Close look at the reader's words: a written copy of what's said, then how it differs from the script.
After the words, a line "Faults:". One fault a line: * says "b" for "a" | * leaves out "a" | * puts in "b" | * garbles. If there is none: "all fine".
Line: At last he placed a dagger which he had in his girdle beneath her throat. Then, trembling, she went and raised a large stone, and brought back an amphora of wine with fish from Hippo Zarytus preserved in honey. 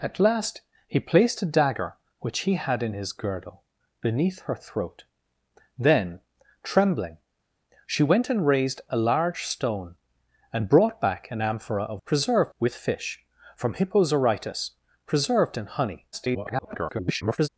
At last he placed a dagger which he had in his girdle beneath her throat. Then, trembling, she went and raised a large stone, and brought back an amphora of preserved with fish from Hippo Zarytus preserved in honey. [garbled]
Faults:
* says "preserved" for "wine"
* garbles